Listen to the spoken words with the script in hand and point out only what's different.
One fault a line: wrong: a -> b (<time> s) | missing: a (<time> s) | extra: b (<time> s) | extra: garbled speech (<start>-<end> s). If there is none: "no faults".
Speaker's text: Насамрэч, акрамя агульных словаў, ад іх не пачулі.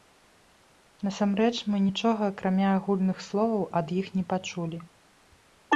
extra: мы нічога (1.7 s)